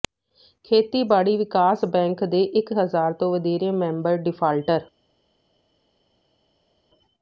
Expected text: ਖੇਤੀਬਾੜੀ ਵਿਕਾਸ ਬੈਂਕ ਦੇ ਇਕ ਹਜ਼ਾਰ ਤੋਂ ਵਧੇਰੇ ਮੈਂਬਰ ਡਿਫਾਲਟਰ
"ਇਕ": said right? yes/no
yes